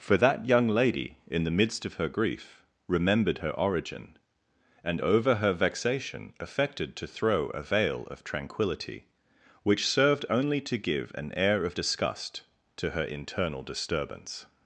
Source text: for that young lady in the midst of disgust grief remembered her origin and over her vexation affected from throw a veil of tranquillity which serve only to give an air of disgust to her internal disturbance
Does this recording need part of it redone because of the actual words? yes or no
yes